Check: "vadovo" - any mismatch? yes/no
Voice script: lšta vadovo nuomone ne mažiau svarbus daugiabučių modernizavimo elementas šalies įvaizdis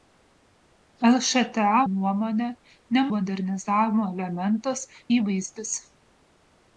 yes